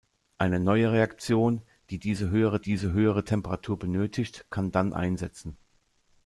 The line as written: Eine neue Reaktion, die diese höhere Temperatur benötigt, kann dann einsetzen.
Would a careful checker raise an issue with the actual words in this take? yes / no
yes